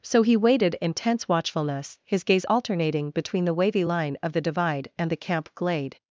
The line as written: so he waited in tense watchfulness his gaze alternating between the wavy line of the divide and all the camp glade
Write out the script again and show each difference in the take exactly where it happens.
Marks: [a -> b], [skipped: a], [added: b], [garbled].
so he waited in tense watchfulness his gaze alternating between the wavy line of the divide and [skipped: all] the camp glade